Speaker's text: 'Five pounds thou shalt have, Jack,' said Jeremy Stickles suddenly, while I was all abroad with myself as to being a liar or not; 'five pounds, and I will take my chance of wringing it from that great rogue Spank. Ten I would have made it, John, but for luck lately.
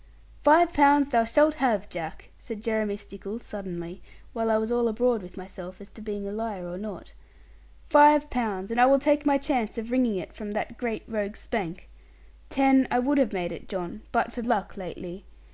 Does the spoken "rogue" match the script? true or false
true